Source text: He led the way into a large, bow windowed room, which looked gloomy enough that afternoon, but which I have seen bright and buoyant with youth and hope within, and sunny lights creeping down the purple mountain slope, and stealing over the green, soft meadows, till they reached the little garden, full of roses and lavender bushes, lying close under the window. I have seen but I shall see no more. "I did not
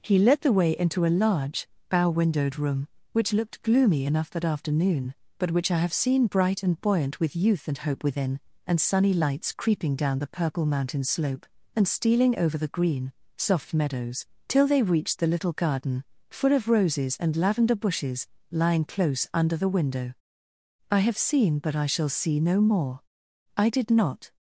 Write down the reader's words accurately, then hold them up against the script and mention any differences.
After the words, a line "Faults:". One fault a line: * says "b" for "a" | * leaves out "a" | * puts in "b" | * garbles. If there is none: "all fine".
He led the way into a large, bow windowed room, which looked gloomy enough that afternoon, but which I have seen bright and buoyant with youth and hope within, and sunny lights creeping down the purple mountain slope, and stealing over the green, soft meadows, till they reached the little garden, full of roses and lavender bushes, lying close under the window. I have seen but I shall see no more. "I did not
Faults:
all fine